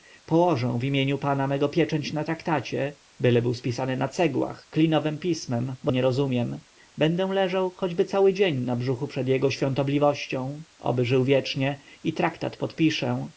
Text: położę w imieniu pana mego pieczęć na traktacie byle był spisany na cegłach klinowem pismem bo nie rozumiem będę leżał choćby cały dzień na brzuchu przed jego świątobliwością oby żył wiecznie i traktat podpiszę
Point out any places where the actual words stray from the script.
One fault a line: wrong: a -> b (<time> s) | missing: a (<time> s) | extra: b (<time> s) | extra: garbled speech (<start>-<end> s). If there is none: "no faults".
no faults